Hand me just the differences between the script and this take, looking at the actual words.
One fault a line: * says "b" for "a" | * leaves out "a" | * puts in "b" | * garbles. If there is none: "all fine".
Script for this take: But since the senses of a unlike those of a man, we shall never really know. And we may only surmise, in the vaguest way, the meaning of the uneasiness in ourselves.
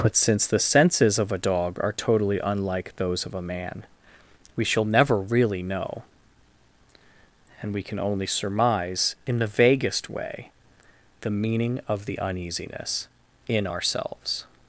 * puts in "dog are totally"
* says "can" for "may"